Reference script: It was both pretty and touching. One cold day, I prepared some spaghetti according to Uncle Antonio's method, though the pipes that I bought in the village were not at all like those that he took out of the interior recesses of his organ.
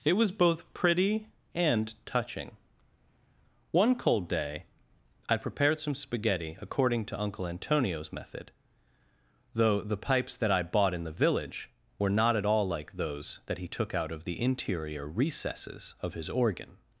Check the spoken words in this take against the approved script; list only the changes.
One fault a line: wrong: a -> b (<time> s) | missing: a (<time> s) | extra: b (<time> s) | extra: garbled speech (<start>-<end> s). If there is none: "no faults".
no faults